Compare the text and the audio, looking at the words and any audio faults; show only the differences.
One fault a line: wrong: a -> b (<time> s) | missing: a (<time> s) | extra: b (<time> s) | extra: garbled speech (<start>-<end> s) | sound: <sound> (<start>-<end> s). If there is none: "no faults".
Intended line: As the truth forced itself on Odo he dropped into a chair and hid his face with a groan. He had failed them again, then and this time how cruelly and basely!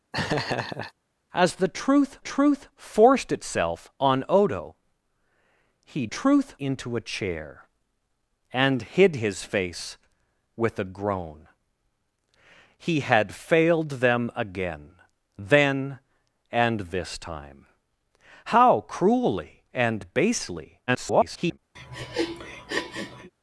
sound: laugh (0.1-0.9 s)
extra: truth (2.2 s)
wrong: dropped -> truth (6.1 s)
extra: garbled speech (20.9-21.6 s)
sound: sniff (21.8-23.3 s)